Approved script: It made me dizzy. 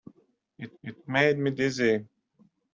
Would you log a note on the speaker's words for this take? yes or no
yes